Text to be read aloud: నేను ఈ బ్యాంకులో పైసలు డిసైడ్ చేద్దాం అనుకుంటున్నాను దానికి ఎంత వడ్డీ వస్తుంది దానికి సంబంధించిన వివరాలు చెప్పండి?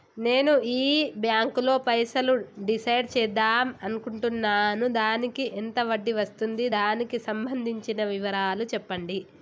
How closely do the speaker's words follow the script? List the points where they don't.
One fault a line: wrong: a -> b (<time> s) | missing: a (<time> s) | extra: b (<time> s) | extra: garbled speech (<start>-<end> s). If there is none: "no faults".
no faults